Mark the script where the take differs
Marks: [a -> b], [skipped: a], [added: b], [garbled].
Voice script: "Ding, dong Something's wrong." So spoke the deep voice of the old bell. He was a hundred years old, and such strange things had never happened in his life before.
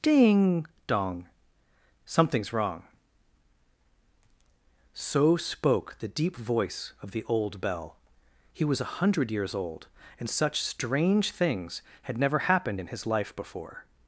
"Ding, dong Something's wrong." So spoke the deep voice of the old bell. He was a hundred years old, and such strange things had never happened in his life before.